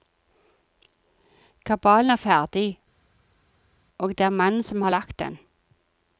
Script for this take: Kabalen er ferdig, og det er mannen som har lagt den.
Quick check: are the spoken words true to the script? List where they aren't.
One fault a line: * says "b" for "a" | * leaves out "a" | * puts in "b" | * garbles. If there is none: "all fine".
all fine